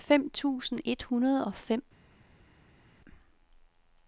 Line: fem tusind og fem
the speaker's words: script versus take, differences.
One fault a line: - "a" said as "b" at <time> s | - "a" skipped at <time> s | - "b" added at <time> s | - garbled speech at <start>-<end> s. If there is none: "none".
- "et hundrede" added at 0.8 s